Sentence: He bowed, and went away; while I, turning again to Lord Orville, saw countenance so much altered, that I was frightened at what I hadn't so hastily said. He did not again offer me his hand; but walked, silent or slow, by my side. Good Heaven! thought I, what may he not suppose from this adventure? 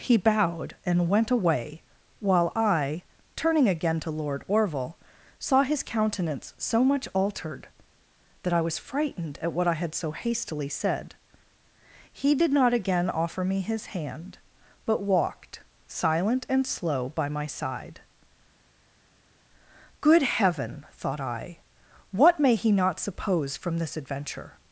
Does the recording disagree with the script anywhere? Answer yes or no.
yes